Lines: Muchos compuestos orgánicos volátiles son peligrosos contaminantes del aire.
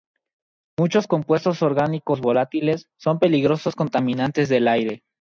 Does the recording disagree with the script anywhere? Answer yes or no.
no